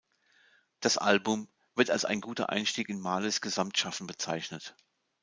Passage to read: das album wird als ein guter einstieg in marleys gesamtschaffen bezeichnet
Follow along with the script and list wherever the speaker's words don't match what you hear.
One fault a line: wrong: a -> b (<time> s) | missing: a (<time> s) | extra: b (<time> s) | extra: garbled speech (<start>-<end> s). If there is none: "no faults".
no faults